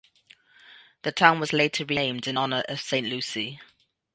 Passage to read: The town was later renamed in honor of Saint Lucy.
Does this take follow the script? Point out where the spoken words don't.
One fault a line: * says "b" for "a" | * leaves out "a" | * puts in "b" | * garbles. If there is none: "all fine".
all fine